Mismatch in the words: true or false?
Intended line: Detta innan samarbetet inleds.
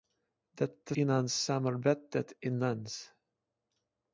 false